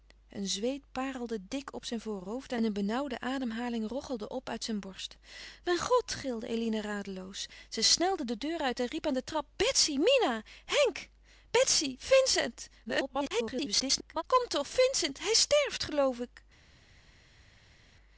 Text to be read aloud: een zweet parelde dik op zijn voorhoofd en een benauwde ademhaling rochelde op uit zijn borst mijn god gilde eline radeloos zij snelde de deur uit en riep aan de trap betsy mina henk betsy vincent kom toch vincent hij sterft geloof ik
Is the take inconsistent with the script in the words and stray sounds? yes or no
yes